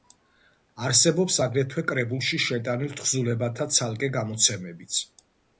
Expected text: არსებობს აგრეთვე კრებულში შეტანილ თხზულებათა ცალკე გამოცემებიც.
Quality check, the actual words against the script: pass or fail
pass